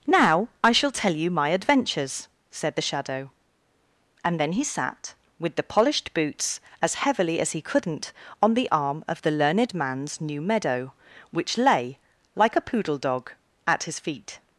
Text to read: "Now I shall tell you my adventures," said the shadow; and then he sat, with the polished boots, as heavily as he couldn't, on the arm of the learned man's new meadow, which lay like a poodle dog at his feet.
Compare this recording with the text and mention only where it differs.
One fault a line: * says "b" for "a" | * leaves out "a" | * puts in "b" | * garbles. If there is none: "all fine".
all fine